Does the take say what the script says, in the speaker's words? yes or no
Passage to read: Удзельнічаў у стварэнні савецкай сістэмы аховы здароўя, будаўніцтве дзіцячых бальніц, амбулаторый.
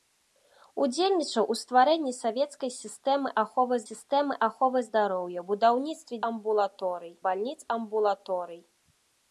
no